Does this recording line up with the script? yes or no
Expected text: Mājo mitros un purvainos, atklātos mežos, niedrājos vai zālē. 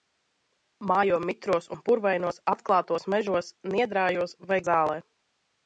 yes